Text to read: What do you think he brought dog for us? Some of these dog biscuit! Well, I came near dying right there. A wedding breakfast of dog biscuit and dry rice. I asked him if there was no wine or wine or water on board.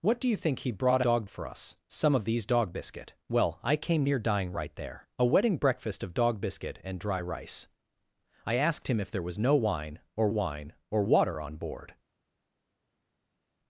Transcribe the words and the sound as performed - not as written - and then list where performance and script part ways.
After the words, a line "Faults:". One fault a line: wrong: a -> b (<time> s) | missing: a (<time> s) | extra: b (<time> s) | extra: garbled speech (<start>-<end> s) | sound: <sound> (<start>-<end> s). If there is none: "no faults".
What do you think he brought dog for us? Some of these dog biscuit! Well, I came near dying right there. A wedding breakfast of dog biscuit and dry rice. I asked him if there was no wine or wine or water on board.
Faults:
no faults